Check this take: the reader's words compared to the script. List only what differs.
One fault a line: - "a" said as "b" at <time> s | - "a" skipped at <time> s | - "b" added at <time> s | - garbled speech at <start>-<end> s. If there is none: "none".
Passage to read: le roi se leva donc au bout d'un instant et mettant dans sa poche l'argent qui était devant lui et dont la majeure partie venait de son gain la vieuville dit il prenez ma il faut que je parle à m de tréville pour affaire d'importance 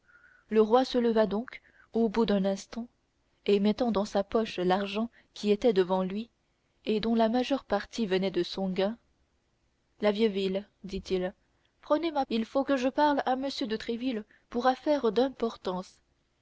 none